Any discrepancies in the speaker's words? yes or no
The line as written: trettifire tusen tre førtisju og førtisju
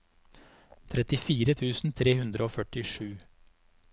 yes